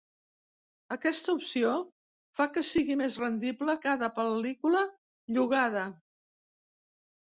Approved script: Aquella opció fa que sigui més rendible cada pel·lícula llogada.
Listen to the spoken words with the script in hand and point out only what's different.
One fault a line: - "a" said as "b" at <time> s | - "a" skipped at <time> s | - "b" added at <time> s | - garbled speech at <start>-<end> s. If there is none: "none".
- "Aquella" said as "Aquesta" at 0.9 s